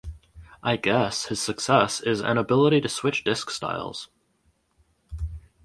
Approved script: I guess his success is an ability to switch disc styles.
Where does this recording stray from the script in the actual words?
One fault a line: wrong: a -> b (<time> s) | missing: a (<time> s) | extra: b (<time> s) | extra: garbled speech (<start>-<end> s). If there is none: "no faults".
no faults